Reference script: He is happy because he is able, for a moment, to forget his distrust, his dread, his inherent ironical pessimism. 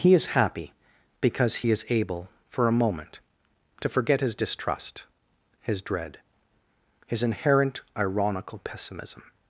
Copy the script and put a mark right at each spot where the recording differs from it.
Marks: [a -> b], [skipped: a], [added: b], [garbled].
He is happy because he is able, for a moment, to forget his distrust, his dread, his inherent ironical pessimism.